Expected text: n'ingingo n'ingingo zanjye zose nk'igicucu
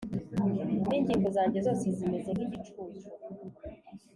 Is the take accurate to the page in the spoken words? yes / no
no